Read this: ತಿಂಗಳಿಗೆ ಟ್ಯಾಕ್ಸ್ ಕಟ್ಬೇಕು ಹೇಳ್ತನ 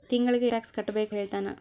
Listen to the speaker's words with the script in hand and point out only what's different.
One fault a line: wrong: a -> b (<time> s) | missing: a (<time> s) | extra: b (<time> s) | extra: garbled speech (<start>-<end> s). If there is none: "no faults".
no faults